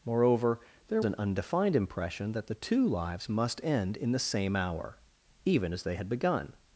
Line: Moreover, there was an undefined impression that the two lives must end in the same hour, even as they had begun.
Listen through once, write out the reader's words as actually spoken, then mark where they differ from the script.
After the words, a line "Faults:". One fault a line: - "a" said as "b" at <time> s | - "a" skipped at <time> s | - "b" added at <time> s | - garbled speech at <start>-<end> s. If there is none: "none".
Moreover, there an undefined impression that the two lives must end in the same hour, even as they had begun.
Faults:
- "was" skipped at 1.0 s